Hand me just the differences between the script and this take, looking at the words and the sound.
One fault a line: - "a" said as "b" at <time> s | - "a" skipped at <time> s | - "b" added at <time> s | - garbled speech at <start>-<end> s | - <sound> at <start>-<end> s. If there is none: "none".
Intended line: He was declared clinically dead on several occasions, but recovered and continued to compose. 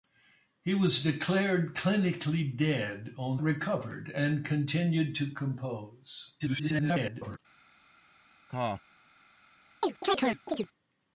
- "several occasions but" skipped at 3.4 s
- garbled speech at 6.4-7.4 s
- cough at 8.5-8.8 s
- chirp at 9.8-10.7 s